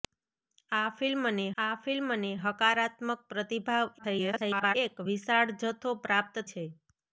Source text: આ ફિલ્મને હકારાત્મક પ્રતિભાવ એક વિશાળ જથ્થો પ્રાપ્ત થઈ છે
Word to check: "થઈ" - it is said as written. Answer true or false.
false